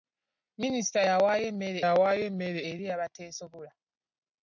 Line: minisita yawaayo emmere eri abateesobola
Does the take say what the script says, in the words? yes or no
no